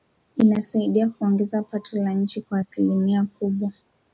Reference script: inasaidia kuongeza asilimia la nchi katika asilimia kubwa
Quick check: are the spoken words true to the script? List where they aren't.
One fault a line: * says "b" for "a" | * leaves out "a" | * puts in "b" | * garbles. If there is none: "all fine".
* says "pato" for "asilimia"
* says "kwa" for "katika"